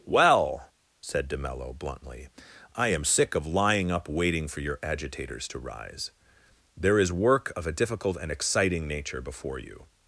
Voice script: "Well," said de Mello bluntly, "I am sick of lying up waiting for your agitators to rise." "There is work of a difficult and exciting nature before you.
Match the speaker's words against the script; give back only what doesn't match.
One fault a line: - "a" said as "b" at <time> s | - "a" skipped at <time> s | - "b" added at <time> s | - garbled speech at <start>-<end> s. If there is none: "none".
none